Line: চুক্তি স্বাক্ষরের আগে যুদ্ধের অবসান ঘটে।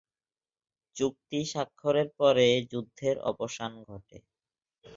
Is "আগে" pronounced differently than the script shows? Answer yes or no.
yes